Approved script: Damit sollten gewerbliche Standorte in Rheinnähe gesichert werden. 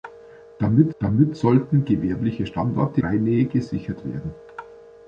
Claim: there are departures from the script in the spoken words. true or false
true